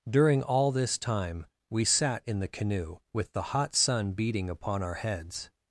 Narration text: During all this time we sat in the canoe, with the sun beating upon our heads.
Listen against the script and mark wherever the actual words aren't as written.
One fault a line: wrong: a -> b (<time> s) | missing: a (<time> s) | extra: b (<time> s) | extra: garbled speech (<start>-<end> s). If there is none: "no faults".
extra: hot (3.5 s)